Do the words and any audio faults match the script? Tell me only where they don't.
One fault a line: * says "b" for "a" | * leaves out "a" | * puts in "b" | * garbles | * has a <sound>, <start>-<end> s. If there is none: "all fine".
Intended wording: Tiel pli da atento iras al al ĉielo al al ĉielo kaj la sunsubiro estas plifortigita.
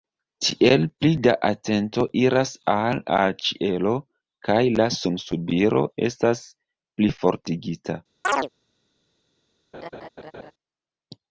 * leaves out "al al ĉielo"
* has a chirp, 8.2-8.5 s
* has a laugh, 9.7-10.5 s